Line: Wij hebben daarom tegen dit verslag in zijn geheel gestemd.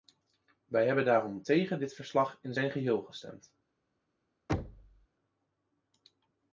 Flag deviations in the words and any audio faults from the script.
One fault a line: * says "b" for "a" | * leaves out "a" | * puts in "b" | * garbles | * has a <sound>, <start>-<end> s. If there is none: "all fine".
* has a thud, 4.5-5.1 s